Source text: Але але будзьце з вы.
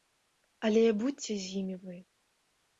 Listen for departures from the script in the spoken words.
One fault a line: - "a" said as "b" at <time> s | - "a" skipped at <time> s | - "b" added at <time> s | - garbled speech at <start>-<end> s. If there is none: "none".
- "але" skipped at 0.8 s
- "імі" added at 1.6 s